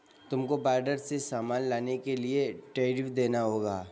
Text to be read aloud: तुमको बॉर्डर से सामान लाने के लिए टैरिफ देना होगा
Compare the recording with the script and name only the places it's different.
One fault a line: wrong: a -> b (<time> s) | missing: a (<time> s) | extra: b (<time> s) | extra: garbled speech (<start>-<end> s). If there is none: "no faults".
no faults